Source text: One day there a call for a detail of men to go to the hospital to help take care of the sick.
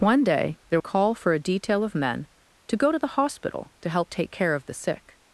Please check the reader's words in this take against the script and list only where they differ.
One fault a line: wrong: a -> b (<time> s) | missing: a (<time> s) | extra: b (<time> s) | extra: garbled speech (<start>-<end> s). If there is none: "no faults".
no faults